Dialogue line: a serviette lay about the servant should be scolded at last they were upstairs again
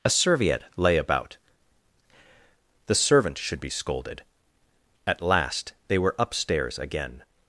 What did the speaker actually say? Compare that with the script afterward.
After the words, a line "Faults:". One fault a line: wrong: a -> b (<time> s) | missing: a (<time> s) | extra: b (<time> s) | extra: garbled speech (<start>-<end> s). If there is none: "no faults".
a serviette lay about the servant should be scolded at last they were upstairs again
Faults:
no faults